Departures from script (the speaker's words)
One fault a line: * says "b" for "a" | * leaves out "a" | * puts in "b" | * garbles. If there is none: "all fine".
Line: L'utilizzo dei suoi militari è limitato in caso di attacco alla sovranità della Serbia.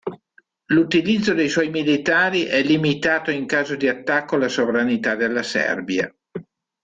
all fine